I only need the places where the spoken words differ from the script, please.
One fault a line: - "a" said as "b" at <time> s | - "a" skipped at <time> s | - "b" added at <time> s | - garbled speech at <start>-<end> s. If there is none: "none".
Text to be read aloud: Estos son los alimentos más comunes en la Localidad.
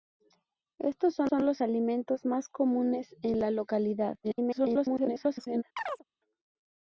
- "son" added at 1.3 s
- garbled speech at 4.2-5.6 s